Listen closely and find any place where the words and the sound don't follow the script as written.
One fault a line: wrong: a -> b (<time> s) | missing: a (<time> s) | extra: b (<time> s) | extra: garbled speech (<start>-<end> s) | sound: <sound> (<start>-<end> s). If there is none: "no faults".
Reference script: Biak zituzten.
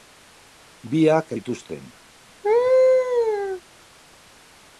sound: laugh (2.4-3.6 s)